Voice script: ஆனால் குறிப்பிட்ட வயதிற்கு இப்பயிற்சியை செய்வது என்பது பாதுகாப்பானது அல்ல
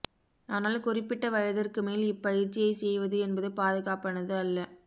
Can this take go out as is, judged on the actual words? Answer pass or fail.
fail